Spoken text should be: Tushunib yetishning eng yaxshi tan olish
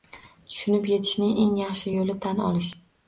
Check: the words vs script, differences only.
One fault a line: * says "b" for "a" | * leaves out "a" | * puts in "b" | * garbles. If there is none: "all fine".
* puts in "yo'li"